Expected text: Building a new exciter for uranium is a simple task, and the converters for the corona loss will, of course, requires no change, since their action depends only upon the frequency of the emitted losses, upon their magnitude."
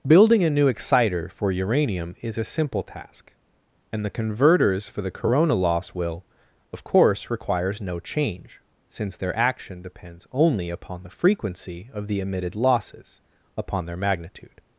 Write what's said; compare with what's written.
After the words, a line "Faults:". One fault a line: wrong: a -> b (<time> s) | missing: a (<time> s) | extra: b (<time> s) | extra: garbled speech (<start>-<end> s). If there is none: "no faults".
Building a new exciter for uranium is a simple task, and the converters for the corona loss will, of course, requires no change, since their action depends only upon the frequency of the emitted losses, upon their magnitude."
Faults:
no faults